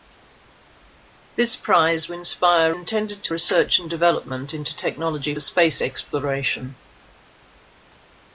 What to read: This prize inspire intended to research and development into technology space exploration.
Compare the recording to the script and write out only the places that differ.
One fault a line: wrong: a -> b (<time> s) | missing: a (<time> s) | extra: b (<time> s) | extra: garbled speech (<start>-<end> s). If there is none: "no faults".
no faults